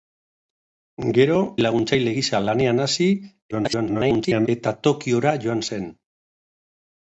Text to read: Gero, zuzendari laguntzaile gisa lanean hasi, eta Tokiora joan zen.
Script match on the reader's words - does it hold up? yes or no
no